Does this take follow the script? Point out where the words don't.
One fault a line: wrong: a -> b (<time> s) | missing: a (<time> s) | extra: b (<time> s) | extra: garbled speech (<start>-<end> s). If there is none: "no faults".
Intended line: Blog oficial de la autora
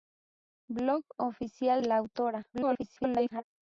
missing: de (1.8 s)
extra: garbled speech (2.5-3.4 s)